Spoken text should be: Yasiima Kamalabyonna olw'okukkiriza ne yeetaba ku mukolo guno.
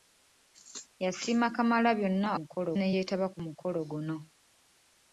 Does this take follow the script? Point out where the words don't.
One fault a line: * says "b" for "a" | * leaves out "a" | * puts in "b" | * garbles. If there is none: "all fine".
* says "mukolo" for "olw'okukkiriza"